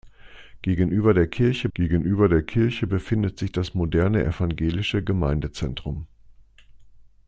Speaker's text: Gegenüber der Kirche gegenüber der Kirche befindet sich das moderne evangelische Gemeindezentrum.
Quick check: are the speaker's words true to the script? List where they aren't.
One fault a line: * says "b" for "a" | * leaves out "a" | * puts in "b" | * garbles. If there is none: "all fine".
all fine